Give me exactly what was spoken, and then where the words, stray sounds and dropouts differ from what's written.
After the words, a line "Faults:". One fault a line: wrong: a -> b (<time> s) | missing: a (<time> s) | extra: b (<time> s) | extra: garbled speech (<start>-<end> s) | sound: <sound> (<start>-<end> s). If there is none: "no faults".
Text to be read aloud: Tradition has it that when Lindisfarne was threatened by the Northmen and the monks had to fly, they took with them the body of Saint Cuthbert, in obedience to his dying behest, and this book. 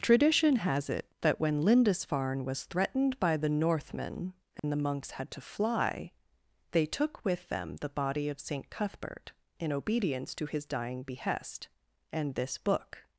Tradition has it that when Lindisfarne was threatened by the Northmen and the monks had to fly, they took with them the body of Saint Cuthbert, in obedience to his dying behest, and this book.
Faults:
sound: dropout (4.6-4.6 s)